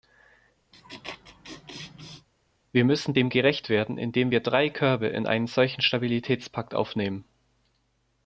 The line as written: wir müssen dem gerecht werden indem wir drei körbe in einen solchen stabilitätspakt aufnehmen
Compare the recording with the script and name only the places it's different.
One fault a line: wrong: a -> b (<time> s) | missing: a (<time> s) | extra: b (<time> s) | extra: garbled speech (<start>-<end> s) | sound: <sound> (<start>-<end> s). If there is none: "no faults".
sound: laugh (0.7-2.3 s)